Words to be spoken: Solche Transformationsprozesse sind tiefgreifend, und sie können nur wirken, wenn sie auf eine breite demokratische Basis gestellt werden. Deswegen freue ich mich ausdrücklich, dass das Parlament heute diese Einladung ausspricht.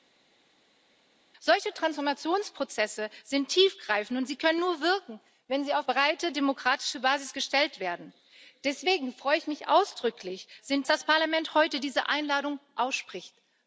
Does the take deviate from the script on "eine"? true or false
true